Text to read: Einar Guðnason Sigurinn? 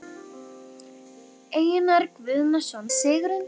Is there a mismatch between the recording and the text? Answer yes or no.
no